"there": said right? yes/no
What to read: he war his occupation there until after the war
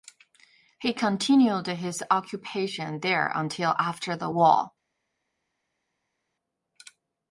yes